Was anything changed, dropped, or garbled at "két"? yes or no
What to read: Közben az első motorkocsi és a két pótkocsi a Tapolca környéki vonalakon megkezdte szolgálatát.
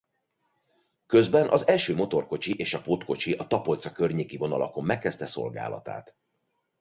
yes